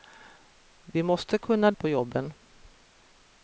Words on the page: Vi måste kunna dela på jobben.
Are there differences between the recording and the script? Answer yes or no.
yes